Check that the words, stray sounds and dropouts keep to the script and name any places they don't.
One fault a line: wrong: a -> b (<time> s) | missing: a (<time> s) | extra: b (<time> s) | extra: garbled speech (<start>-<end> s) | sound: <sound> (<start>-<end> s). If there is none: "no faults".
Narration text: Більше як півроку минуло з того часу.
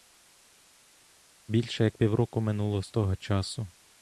no faults